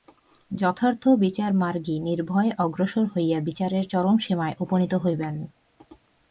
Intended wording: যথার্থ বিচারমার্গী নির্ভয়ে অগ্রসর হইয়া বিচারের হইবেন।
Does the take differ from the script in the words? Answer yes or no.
yes